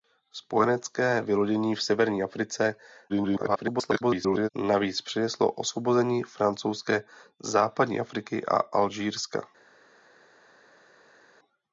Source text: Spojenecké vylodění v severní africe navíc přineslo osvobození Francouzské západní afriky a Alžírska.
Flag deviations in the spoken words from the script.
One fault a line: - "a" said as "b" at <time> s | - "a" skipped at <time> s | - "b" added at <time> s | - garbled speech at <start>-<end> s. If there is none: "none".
- garbled speech at 3.1-4.5 s